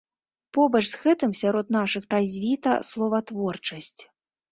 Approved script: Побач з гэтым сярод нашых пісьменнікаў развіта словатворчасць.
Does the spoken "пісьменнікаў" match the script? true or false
false